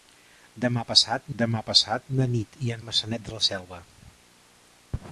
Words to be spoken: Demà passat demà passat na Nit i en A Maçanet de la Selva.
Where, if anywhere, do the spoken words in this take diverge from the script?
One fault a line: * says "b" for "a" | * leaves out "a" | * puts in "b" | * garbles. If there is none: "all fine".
all fine